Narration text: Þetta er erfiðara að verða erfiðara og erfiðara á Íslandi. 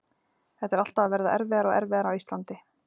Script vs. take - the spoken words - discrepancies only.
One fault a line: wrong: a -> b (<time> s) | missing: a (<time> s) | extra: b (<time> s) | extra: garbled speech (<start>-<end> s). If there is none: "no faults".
wrong: erfiðara -> alltaf (0.8 s)